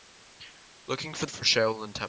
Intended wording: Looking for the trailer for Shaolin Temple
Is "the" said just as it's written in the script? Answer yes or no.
no